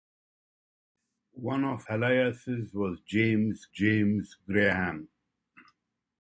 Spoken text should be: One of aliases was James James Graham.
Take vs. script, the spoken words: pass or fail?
pass